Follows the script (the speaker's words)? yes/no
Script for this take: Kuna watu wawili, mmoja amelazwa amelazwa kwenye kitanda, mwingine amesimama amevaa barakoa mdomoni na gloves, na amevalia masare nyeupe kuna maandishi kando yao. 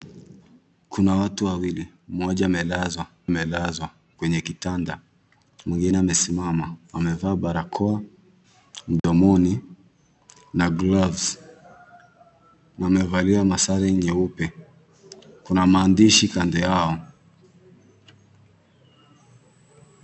yes